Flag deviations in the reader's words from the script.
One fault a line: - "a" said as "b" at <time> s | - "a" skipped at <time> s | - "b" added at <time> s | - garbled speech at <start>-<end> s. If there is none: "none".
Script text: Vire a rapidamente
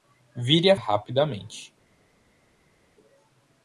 none